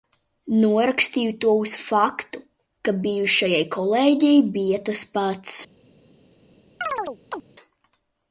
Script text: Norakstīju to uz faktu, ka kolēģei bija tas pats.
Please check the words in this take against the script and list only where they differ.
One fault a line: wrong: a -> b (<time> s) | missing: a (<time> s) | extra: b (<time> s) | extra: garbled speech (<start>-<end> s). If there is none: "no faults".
extra: bijušajai (3.0 s)